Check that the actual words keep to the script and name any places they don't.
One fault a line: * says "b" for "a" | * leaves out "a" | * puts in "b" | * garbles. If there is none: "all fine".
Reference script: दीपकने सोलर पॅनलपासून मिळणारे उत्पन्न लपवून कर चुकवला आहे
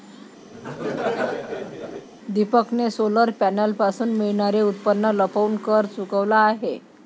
all fine